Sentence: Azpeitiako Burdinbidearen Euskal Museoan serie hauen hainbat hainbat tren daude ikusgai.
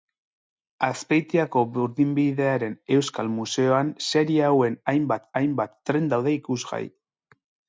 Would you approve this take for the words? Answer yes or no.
yes